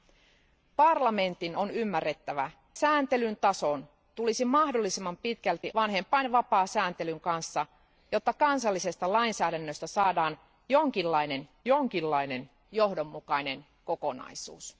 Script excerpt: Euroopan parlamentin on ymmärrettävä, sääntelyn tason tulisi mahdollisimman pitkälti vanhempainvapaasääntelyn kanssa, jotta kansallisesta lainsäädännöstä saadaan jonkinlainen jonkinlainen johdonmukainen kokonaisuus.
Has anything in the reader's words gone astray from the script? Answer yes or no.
no